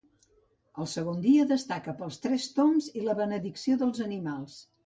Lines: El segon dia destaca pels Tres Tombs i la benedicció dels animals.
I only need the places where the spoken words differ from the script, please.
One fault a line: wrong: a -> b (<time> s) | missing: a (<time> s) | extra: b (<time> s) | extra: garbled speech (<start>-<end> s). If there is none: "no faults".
no faults